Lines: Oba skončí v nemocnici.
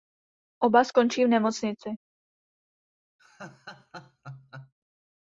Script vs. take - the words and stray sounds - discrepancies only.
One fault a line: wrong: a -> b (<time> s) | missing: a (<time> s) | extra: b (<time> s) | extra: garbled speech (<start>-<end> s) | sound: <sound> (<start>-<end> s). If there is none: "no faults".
sound: laugh (3.2-4.7 s)